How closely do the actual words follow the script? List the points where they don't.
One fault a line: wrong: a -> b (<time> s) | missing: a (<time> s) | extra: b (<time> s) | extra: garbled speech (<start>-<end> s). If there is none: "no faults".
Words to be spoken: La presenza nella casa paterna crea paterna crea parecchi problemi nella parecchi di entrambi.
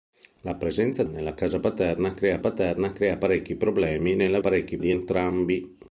no faults